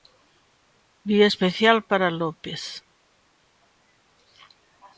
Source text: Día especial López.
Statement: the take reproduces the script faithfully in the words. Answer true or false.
false